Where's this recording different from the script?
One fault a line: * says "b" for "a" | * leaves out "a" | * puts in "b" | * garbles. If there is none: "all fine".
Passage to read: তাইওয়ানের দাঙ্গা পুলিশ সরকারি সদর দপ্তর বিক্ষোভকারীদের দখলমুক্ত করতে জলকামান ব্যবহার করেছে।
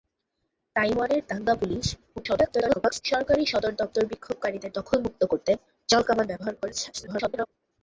* garbles
* garbles